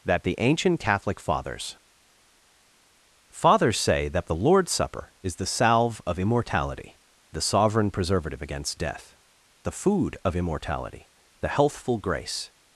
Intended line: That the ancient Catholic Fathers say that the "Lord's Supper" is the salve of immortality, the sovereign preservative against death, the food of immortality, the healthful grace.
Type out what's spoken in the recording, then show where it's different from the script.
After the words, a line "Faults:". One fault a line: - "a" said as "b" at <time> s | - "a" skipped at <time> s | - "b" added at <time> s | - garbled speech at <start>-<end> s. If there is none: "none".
That the ancient Catholic Fathers Fathers say that the "Lord's Supper" is the salve of immortality, the sovereign preservative against death, the food of immortality, the healthful grace.
Faults:
- "Fathers" added at 3.3 s